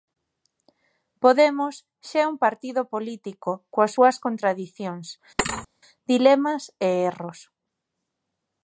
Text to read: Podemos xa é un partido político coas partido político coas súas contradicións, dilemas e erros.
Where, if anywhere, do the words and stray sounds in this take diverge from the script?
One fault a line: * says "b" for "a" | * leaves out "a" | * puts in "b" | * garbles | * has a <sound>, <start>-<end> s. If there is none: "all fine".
* leaves out "partido político coas"
* has a thud, 5.4-5.7 s